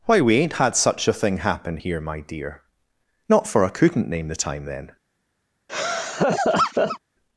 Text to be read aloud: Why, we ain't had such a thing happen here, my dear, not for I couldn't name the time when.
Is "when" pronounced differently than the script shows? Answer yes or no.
yes